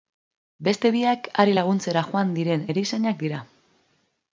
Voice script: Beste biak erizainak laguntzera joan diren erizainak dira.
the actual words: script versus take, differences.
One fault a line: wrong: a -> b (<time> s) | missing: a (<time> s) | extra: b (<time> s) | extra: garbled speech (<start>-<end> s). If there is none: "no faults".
wrong: erizainak -> hari (1.4 s)